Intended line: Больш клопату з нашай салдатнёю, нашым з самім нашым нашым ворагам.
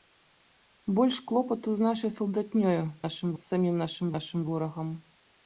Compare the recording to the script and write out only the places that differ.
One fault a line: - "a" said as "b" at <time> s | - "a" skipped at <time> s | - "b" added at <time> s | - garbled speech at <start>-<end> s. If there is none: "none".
none